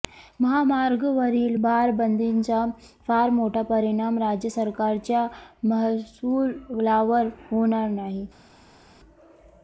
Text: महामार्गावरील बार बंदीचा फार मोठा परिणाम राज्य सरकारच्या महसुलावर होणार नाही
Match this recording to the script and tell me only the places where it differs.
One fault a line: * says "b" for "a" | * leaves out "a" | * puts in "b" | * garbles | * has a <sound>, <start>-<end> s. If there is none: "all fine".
all fine